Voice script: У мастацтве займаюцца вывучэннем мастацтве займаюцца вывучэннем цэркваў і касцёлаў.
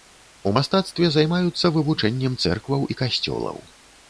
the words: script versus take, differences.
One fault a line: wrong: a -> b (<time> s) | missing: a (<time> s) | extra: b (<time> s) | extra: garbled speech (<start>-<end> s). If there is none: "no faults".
missing: мастацтве займаюцца вывучэннем (2.4 s)